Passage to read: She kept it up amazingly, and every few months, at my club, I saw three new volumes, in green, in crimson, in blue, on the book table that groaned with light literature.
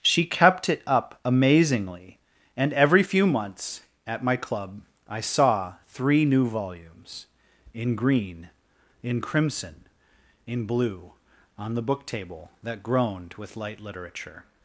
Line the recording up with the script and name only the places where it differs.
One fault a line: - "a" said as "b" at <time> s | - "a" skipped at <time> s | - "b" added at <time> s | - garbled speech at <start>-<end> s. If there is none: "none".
none